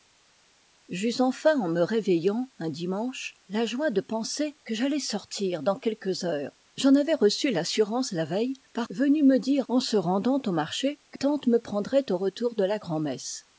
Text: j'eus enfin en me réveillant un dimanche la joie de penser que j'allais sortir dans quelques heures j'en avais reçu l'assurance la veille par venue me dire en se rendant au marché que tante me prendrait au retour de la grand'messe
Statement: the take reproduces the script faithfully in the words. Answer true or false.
true